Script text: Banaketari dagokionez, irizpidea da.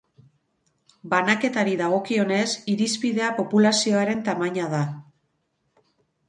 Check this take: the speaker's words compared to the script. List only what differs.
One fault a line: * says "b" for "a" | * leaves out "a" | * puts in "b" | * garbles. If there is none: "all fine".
* puts in "populazioaren tamaina"